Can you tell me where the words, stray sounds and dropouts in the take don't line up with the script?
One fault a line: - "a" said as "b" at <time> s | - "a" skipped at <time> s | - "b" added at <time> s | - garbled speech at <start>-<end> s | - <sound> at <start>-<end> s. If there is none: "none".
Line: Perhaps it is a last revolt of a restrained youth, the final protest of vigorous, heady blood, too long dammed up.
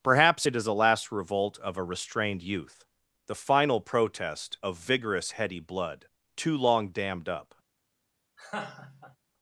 - laugh at 8.4-9.2 s